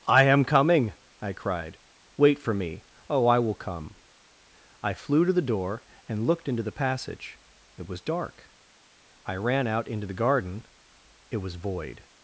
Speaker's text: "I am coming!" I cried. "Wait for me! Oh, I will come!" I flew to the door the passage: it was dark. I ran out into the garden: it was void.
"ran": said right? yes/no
yes